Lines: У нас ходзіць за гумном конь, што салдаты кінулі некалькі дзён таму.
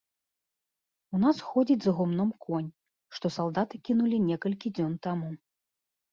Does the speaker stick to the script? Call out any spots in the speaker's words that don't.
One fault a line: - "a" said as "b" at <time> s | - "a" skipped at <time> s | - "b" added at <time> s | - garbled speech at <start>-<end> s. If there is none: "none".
none